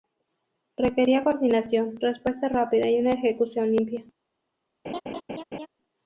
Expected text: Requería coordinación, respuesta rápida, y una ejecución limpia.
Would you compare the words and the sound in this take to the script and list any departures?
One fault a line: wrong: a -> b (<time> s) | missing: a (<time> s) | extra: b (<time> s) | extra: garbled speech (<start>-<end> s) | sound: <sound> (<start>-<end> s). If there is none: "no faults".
sound: laugh (4.8-5.7 s)